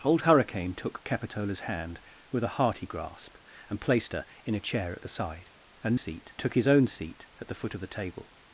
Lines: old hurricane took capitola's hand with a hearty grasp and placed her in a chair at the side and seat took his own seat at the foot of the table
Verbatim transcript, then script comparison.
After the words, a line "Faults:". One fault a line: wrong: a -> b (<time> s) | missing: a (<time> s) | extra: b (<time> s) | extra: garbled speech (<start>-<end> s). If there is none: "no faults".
old hurricane took capitola's hand with a hearty grasp and placed her in a chair at the side and seat took his own seat at the foot of the table
Faults:
no faults